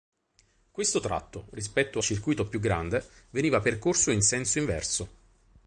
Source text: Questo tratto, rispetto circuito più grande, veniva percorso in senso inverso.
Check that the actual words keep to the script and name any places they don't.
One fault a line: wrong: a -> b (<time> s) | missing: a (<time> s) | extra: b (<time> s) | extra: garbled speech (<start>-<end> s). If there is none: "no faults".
no faults